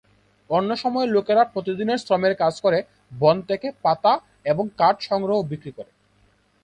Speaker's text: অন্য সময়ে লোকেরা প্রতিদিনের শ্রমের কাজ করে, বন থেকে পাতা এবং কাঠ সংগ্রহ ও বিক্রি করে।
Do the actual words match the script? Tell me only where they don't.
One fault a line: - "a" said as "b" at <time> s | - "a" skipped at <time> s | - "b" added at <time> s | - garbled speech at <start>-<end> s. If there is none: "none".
none